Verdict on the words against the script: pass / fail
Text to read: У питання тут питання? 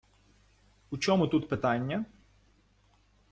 fail